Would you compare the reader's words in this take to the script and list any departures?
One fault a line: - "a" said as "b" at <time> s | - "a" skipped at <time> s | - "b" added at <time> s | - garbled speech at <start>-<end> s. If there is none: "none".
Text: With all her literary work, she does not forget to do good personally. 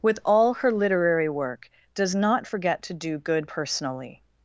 - "she" skipped at 1.7 s